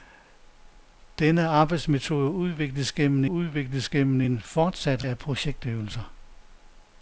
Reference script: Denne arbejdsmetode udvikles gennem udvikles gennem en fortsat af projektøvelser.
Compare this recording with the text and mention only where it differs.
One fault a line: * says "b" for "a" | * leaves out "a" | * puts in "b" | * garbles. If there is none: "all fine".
all fine